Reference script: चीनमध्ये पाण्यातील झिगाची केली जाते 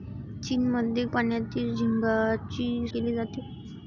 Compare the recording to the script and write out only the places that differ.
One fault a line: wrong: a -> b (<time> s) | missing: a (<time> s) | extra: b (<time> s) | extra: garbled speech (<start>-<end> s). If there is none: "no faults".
no faults